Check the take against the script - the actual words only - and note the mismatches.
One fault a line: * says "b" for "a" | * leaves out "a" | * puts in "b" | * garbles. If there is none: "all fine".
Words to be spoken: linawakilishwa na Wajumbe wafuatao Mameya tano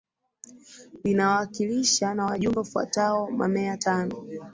all fine